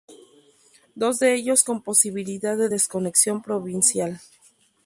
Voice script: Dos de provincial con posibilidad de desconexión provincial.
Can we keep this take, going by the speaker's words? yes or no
no